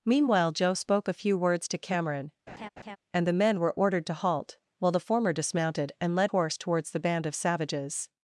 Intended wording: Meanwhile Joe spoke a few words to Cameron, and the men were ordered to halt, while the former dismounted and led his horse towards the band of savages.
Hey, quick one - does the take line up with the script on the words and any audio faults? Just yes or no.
no